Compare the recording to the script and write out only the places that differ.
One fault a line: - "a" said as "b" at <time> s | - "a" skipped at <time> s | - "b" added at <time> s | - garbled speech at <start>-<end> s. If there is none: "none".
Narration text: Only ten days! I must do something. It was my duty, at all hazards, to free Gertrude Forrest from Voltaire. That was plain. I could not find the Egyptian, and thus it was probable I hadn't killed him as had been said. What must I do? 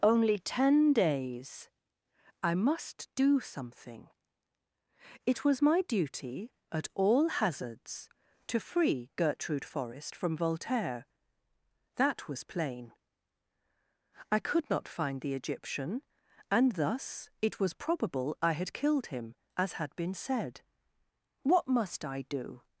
- "hadn't" said as "had" at 18.5 s